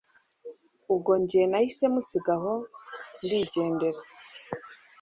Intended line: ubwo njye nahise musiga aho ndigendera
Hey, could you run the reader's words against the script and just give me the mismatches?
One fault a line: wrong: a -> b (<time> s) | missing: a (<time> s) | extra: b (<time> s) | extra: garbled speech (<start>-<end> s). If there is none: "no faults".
no faults